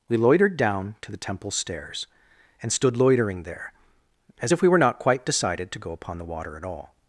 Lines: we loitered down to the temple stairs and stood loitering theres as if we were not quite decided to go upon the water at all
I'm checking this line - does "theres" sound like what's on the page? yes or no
no